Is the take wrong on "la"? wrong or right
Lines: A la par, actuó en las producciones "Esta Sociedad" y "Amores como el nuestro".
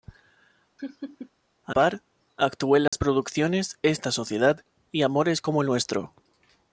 wrong